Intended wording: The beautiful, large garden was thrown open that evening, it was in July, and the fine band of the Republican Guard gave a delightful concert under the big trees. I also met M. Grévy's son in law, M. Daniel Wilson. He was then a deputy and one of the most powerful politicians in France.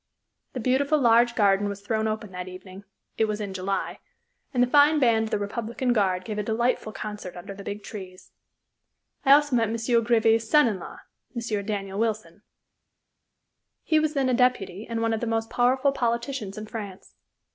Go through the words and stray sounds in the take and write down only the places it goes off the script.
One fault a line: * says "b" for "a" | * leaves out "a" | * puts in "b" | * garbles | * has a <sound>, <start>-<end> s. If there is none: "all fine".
all fine